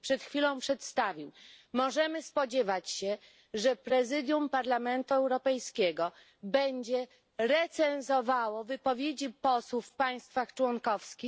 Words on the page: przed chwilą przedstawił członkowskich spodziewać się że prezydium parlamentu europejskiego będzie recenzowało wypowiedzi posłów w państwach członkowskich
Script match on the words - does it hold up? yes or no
no